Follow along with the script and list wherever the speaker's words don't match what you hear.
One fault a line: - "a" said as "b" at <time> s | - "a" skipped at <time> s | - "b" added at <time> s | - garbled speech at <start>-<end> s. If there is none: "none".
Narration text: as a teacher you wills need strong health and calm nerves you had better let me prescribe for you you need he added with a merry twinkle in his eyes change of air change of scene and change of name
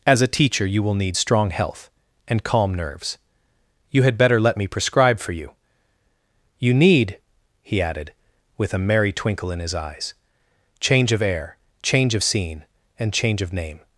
- "wills" said as "will" at 0.8 s